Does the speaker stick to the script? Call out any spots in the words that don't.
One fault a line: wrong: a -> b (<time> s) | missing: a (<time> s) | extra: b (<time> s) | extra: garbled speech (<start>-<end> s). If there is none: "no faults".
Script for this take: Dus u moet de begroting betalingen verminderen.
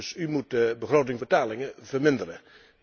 no faults